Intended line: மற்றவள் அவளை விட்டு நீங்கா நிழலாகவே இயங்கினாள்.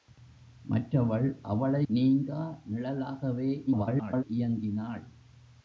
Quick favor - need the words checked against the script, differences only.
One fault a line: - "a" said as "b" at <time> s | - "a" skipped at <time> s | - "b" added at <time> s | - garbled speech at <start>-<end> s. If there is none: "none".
- "விட்டு" skipped at 1.8 s
- garbled speech at 3.7-4.2 s